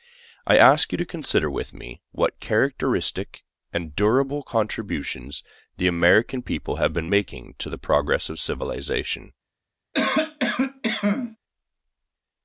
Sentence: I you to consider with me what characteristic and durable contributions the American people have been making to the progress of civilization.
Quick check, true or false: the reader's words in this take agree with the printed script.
false